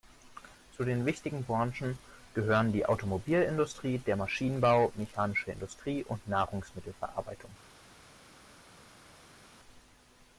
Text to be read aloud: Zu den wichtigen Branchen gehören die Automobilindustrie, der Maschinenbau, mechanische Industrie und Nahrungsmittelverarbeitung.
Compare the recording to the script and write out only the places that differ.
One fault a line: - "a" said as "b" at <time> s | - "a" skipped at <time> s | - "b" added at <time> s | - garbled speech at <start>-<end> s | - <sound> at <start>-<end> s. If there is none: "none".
none